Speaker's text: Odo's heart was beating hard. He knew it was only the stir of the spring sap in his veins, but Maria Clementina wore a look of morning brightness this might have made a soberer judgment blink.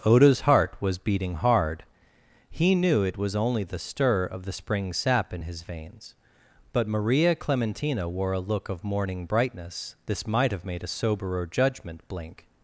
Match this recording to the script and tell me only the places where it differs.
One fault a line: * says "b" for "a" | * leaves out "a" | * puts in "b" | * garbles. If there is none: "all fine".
all fine